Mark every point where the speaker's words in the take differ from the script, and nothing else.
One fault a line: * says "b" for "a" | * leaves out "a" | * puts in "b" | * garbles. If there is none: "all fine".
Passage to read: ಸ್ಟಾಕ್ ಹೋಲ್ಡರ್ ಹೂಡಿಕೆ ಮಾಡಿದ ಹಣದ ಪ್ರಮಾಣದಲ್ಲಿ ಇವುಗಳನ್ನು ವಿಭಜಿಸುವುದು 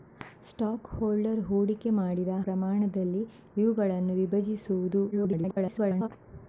* leaves out "ಹಣದ"
* garbles